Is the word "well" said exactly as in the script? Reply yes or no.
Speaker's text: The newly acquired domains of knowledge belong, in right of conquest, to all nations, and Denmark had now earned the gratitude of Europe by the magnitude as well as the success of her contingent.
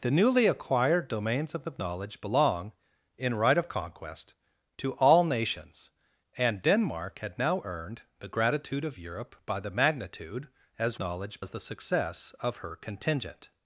no